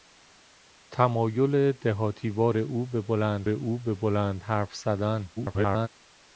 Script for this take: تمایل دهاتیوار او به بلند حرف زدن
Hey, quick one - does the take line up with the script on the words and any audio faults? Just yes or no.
no